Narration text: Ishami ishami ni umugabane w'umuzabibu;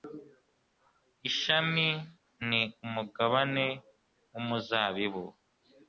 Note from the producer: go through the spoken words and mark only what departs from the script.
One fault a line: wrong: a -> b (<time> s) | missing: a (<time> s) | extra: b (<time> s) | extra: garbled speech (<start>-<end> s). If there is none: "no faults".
missing: ishami (1.9 s)